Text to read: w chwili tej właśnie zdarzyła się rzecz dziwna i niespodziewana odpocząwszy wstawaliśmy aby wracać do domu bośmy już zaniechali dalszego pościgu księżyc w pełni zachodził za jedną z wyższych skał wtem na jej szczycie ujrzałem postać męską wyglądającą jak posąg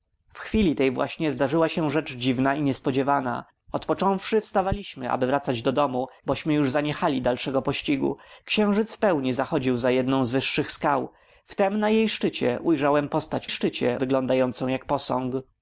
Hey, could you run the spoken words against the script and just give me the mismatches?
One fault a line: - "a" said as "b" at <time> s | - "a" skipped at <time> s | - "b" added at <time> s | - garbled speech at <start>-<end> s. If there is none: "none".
- "męską" said as "szczycie" at 13.5 s